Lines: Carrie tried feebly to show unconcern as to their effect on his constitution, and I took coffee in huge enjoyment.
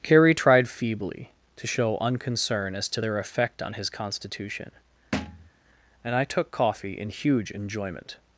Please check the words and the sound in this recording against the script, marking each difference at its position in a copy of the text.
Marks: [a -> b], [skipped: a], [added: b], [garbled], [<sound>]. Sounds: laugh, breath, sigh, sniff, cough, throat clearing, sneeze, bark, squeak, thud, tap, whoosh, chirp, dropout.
Carrie tried feebly to show unconcern as to their effect on his constitution, [thud] and I took coffee in huge enjoyment.